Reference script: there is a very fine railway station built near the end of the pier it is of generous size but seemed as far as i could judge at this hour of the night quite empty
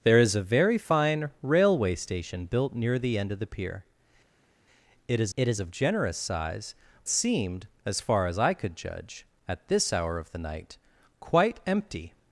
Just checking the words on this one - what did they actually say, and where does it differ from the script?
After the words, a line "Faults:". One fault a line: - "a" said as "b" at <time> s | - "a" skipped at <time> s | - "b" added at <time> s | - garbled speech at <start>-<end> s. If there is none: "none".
there is a very fine railway station built near the end of the pier it is it is of generous size seemed as far as i could judge at this hour of the night quite empty
Faults:
- "it is" added at 5.4 s
- "but" skipped at 6.8 s